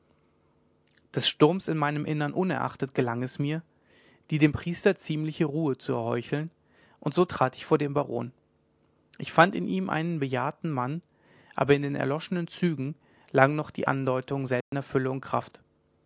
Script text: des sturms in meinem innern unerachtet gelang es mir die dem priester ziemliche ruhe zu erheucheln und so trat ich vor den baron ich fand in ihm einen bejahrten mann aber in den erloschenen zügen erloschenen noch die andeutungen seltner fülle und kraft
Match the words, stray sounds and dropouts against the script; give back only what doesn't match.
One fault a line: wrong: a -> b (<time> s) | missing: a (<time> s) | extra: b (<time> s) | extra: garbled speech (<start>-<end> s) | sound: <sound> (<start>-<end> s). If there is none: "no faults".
wrong: erloschenen -> lagen (13.3 s)
sound: dropout (14.6-14.7 s)